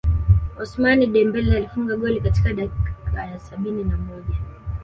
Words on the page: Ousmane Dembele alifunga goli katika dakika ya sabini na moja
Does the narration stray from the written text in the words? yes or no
no